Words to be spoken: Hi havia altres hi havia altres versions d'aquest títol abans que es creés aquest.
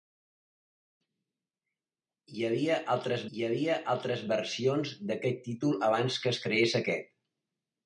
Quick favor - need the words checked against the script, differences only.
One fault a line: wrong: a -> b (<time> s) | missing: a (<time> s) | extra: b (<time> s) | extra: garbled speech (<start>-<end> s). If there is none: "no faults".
no faults